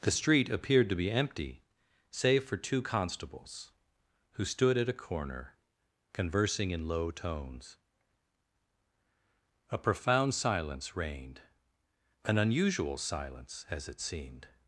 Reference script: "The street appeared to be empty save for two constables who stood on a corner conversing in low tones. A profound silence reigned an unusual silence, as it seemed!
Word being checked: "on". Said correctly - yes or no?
no